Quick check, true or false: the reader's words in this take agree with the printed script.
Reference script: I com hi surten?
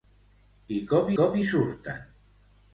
false